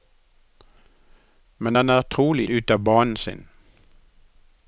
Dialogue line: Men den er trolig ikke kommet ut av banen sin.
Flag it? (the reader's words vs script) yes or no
yes